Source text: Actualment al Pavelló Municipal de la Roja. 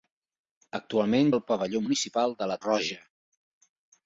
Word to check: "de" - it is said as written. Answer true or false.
true